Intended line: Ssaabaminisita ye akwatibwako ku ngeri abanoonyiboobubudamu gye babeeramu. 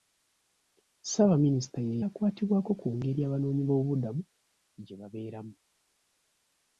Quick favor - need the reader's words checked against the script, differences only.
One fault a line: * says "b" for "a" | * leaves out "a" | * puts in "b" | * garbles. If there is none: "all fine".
all fine